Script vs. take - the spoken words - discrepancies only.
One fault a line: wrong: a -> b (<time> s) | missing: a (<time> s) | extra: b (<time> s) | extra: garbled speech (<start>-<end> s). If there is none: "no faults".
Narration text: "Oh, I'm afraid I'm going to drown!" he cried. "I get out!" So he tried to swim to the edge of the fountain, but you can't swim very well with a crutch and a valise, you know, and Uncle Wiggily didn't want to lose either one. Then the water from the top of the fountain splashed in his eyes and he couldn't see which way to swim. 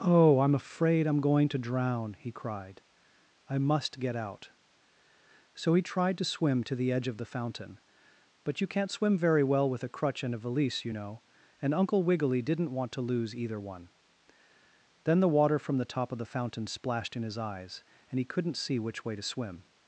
extra: must (3.6 s)